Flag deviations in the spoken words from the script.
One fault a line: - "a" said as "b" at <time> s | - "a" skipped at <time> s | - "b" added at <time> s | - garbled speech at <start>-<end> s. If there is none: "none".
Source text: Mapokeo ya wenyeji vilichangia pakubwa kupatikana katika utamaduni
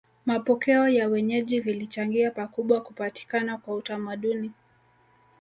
- "katika" said as "kwa" at 3.6 s